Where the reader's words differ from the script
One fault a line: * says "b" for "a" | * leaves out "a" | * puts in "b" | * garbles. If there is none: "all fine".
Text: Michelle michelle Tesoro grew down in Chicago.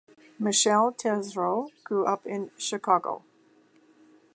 * leaves out "michelle"
* says "up" for "down"